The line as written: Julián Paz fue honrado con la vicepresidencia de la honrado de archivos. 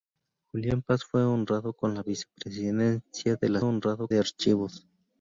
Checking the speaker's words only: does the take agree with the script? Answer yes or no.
yes